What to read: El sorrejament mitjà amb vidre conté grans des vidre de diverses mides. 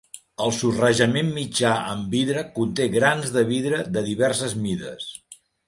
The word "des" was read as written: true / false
false